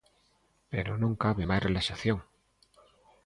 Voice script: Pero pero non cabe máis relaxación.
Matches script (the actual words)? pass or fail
fail